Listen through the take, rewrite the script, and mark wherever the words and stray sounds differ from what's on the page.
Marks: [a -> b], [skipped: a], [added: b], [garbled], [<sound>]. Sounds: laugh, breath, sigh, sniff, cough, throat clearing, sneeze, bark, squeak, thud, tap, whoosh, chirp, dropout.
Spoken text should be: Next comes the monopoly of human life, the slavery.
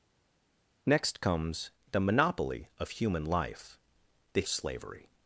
Next comes the monopoly of human life, the slavery.